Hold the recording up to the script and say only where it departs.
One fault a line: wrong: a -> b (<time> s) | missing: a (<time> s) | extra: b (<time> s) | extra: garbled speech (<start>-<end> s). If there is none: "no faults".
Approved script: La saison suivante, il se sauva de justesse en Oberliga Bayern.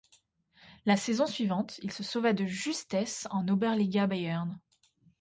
no faults